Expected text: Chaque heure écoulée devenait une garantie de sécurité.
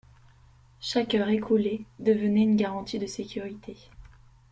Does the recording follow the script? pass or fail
pass